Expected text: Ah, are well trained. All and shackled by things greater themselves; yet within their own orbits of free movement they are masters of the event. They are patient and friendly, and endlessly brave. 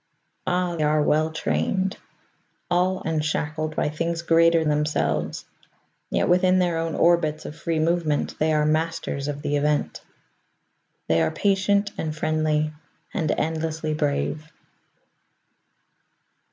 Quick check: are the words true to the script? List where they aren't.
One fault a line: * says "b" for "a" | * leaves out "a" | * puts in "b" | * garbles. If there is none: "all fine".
all fine